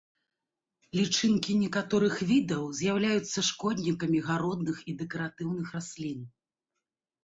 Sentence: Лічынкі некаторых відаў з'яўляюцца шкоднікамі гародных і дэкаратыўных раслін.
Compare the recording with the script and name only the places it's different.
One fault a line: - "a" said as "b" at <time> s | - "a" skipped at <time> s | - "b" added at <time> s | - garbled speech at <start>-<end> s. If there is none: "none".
none